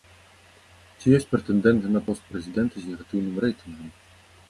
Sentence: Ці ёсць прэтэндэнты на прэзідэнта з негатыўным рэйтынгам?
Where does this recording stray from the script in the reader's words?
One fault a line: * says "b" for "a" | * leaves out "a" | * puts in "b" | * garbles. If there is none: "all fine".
* puts in "пост"